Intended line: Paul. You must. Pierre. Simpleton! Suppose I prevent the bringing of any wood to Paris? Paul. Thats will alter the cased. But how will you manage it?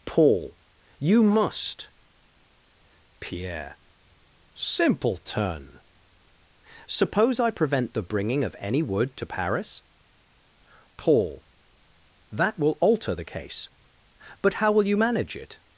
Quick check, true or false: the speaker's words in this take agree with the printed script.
false